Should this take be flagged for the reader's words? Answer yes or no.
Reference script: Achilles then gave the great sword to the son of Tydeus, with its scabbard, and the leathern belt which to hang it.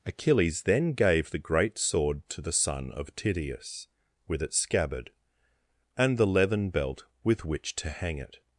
yes